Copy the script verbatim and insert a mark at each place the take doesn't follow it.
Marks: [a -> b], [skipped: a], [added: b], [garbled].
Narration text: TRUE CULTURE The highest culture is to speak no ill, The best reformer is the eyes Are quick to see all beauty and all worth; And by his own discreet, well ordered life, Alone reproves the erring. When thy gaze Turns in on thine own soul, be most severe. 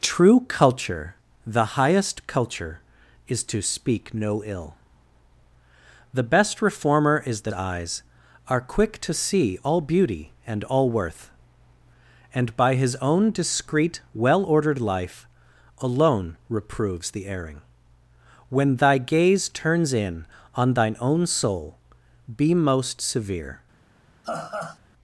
TRUE CULTURE The highest culture is to speak no ill, The best reformer is the eyes Are quick to see all beauty and all worth; And by his own discreet, well ordered life, Alone reproves the erring. When thy gaze Turns in on thine own soul, be most severe.